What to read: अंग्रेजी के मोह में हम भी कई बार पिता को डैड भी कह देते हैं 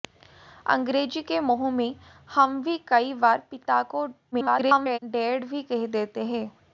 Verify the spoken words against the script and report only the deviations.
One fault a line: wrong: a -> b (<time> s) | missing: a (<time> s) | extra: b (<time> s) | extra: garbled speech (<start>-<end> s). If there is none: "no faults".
extra: garbled speech (4.3-5.0 s)